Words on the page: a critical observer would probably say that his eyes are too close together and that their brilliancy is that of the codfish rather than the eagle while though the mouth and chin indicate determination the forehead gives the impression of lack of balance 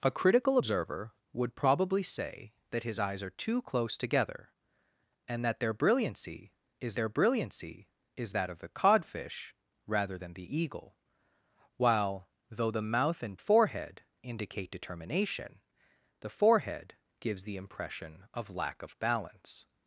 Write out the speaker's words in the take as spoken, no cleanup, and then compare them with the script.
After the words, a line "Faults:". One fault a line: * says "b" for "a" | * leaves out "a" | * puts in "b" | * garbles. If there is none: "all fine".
a critical observer would probably say that his eyes are too close together and that their brilliancy is their brilliancy is that of the codfish rather than the eagle while though the mouth and forehead indicate determination the forehead gives the impression of lack of balance
Faults:
* puts in "their brilliancy is"
* says "forehead" for "chin"